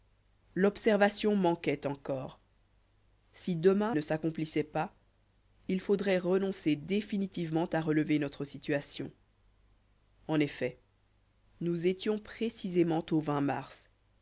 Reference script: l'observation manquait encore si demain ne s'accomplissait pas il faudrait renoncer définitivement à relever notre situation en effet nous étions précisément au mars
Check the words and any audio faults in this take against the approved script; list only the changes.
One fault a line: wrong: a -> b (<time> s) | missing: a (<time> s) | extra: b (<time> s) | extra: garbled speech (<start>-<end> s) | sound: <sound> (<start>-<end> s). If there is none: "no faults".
no faults